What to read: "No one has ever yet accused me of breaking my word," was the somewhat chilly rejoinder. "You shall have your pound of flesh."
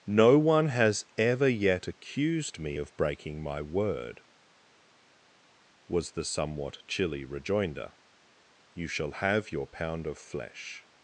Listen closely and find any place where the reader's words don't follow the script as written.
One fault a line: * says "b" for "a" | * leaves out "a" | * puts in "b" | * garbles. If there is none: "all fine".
all fine